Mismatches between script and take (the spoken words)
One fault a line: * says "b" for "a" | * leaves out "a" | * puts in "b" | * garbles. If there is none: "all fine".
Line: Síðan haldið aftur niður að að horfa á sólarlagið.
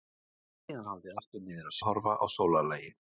all fine